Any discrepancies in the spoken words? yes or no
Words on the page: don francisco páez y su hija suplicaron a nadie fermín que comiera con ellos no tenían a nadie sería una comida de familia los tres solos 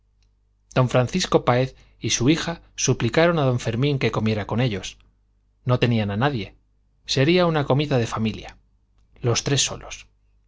yes